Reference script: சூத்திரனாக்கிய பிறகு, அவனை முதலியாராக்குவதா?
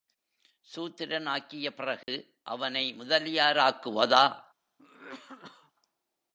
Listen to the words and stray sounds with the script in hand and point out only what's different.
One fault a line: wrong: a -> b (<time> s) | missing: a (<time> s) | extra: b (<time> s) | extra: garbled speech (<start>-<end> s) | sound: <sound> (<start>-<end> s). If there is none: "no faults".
sound: dropout (2.0-2.1 s)
sound: cough (4.8-5.7 s)